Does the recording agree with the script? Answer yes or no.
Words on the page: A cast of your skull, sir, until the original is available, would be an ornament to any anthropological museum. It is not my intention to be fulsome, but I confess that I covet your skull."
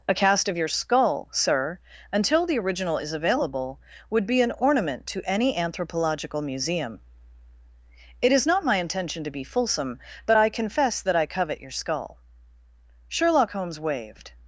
no